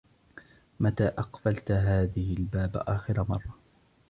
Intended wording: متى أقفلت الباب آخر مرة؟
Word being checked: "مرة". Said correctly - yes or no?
yes